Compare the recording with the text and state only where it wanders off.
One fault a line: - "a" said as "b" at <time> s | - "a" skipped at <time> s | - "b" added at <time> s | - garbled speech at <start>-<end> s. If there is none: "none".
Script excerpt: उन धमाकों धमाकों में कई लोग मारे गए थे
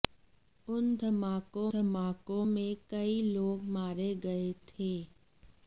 none